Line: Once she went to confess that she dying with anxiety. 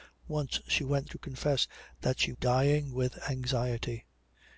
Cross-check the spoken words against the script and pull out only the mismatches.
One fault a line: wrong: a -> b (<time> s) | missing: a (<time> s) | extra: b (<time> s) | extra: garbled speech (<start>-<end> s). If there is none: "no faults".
no faults